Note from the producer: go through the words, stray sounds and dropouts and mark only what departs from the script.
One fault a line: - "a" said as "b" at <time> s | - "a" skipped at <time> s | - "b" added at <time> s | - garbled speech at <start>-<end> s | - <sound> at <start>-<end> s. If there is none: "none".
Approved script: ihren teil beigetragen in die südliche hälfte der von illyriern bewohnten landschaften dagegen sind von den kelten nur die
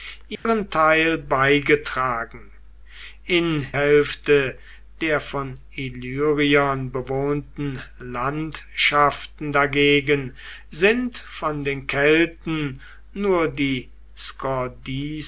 - dropout at 0.3-0.5 s
- "die südliche" skipped at 3.7 s